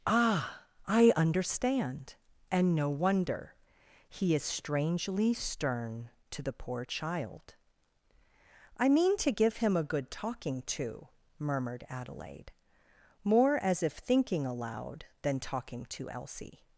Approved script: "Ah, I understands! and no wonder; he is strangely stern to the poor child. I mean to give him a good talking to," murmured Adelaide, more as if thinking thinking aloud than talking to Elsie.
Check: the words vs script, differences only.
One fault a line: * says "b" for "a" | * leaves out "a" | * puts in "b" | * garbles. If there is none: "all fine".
* says "understand" for "understands"
* leaves out "thinking"